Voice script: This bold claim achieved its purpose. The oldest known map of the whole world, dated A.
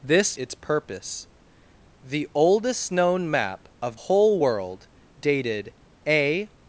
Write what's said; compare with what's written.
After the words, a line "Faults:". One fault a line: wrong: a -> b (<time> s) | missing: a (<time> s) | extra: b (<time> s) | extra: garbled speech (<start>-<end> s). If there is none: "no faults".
This its purpose. The oldest known map of whole world, dated A.
Faults:
missing: bold claim achieved (0.3 s)
missing: the (4.0 s)